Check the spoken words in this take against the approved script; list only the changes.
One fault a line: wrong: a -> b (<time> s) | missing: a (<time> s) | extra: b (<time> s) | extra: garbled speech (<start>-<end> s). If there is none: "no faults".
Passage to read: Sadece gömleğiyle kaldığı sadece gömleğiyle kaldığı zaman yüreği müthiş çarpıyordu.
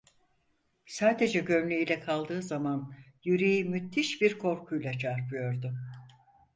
missing: sadece gömleğiyle kaldığı (2.4 s)
extra: bir korkuyla (4.2 s)